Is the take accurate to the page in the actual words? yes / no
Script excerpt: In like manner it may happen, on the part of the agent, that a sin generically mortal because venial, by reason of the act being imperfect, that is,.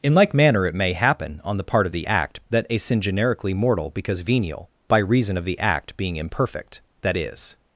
no